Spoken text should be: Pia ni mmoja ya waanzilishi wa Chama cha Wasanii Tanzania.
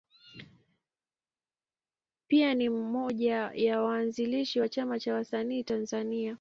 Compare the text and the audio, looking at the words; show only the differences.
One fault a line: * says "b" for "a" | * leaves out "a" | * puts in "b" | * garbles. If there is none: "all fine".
all fine